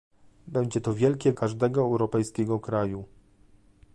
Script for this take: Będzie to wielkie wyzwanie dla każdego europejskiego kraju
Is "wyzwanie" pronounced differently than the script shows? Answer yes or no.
yes